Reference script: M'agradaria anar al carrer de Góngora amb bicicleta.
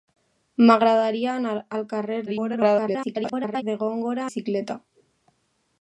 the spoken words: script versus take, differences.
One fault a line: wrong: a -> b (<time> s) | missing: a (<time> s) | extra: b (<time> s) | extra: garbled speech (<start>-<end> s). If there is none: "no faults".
extra: garbled speech (2.3-3.6 s)
missing: amb (4.3 s)